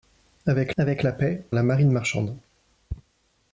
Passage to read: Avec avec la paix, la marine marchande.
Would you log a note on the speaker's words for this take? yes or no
no